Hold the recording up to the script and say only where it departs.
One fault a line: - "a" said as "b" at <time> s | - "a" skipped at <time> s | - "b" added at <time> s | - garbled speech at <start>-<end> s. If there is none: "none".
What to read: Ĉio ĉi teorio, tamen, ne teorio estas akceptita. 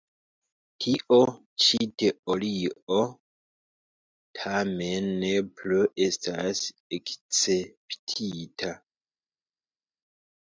- "Ĉio" said as "Tio" at 0.8 s
- "teorio" said as "plu" at 5.6 s